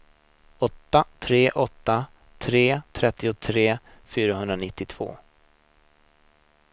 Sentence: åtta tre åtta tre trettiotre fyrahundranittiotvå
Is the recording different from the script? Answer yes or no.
no